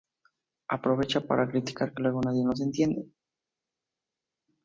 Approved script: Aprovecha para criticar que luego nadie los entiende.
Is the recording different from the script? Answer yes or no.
no